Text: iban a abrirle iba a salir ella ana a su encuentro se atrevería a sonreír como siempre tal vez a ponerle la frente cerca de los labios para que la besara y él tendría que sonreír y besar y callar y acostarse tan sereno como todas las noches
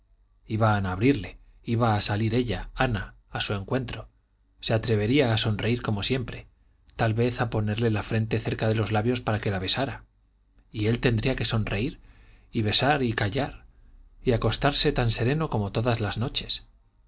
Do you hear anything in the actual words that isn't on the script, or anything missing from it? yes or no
no